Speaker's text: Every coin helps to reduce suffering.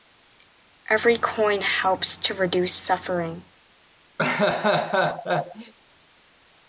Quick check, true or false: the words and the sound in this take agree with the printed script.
false